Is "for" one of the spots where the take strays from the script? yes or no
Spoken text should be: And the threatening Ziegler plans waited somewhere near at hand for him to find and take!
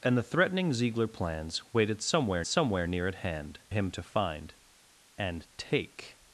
yes